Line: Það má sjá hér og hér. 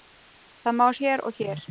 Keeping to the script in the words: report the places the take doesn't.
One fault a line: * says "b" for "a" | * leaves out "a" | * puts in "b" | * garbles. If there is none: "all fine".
* leaves out "sjá"